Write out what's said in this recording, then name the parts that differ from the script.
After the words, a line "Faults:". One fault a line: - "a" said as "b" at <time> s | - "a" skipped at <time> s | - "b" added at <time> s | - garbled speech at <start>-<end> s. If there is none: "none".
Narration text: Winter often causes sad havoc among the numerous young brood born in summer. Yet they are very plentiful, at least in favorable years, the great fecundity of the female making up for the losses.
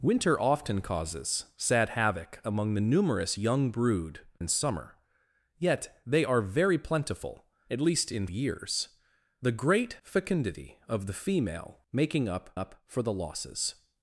Winter often causes sad havoc among the numerous young brood in summer. Yet they are very plentiful, at least in years, the great fecundity of the female making up up for the losses.
Faults:
- "born" skipped at 4.3 s
- "favorable" skipped at 8.3 s
- "up" added at 12.5 s